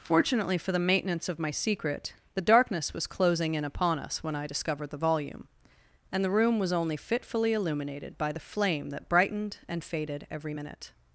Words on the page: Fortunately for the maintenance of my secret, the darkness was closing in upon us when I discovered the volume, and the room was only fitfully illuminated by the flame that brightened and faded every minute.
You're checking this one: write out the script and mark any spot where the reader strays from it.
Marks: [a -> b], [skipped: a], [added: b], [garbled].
Fortunately for the maintenance of my secret, the darkness was closing in upon us when I discovered the volume, and the room was only fitfully illuminated by the flame that brightened and faded every minute.